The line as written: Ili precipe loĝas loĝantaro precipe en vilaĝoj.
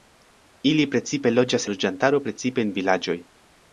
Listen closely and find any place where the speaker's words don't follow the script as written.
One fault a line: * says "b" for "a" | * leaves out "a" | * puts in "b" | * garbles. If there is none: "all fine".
all fine